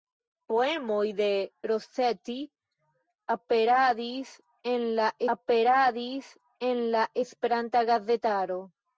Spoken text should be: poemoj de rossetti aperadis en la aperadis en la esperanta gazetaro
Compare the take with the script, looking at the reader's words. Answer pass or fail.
pass